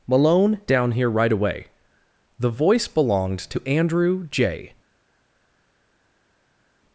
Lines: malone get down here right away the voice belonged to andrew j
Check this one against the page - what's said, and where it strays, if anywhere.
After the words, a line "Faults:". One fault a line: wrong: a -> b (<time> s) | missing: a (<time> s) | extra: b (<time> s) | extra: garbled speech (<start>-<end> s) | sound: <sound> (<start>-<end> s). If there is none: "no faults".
malone down here right away the voice belonged to andrew j
Faults:
missing: get (0.6 s)